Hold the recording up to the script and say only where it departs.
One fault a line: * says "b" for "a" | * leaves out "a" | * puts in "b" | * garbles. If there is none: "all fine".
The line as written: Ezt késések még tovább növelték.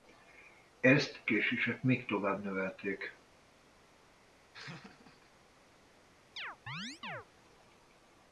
all fine